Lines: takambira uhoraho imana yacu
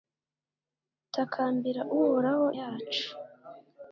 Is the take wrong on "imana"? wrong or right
wrong